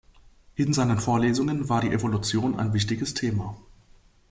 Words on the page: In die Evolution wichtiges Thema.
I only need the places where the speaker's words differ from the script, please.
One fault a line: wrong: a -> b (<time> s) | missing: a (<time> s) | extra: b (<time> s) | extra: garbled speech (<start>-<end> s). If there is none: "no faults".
extra: seinen Vorlesungen war (0.7 s)
extra: ein (2.6 s)